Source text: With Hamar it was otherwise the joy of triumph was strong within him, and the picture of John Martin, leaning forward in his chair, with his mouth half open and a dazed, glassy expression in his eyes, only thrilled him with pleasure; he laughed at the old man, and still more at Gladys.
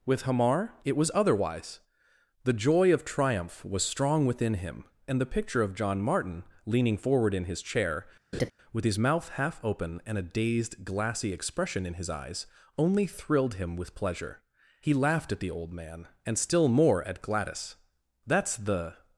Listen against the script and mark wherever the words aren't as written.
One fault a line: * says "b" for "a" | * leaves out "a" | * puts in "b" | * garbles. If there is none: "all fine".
* puts in "That's the"